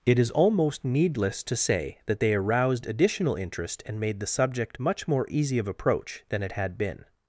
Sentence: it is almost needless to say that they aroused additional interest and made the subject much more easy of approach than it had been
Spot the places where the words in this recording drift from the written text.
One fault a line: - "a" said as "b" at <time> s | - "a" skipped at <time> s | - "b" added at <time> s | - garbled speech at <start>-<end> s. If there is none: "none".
none